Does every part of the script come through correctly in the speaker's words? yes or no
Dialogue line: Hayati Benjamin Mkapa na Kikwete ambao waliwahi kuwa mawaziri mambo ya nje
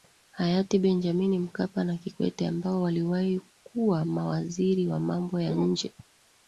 no